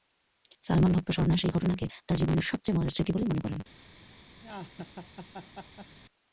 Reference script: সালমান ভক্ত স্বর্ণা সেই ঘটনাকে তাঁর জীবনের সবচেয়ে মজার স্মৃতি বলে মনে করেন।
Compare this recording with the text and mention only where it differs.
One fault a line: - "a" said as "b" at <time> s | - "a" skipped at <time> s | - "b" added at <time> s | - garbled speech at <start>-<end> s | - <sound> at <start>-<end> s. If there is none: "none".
- laugh at 4.4-5.9 s